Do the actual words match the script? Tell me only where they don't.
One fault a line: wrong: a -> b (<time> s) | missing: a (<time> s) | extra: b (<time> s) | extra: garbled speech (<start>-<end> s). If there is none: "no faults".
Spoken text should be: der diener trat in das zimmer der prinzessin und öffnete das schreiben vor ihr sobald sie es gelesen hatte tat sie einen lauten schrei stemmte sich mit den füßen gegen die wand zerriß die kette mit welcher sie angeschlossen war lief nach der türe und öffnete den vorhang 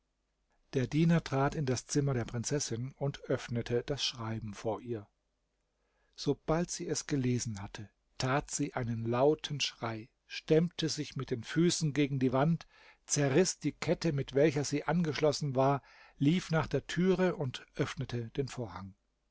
no faults